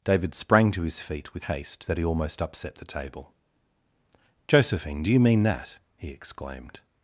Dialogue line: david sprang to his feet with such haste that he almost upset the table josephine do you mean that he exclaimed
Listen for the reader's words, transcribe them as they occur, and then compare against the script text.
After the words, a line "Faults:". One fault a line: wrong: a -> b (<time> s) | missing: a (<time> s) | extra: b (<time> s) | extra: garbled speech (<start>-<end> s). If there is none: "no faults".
david sprang to his feet with haste that he almost upset the table josephine do you mean that he exclaimed
Faults:
missing: such (1.4 s)